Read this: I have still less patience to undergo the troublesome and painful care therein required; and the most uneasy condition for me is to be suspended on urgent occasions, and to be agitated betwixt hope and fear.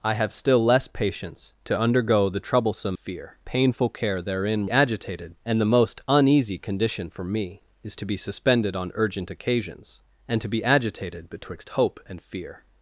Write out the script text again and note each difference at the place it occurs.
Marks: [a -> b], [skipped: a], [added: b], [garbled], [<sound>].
I have still less patience to undergo the troublesome [and -> fear] painful care therein [required; -> agitated] and the most uneasy condition for me is to be suspended on urgent occasions, and to be agitated betwixt hope and fear.